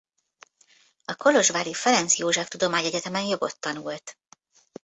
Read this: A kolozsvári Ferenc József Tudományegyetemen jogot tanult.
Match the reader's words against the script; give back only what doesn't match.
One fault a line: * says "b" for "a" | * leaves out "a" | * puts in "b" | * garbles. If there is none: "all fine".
all fine